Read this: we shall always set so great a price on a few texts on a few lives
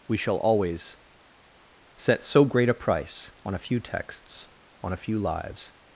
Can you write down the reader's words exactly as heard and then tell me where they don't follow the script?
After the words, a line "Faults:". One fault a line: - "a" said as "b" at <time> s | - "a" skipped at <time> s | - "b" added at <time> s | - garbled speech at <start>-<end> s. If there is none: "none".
we shall always set so great a price on a few texts on a few lives
Faults:
none